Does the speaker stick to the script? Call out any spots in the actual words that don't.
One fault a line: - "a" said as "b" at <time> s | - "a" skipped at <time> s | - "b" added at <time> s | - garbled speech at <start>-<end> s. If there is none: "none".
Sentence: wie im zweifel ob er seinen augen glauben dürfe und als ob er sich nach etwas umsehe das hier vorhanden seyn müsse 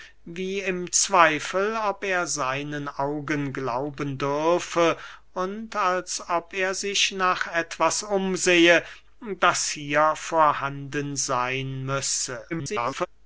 - garbled speech at 12.5-13.1 s